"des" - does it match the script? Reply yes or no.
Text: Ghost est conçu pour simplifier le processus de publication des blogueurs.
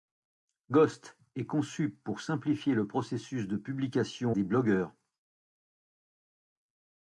yes